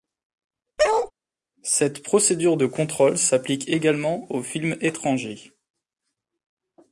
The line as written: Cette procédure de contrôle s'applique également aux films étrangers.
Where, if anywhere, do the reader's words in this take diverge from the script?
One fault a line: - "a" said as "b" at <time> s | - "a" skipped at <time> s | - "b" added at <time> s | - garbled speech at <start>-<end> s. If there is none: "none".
none